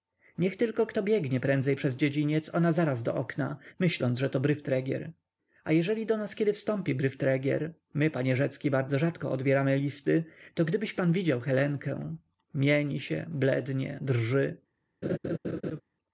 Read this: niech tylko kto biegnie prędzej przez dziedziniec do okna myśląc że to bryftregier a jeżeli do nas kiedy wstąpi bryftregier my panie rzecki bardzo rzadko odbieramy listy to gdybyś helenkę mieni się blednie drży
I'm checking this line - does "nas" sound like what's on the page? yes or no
yes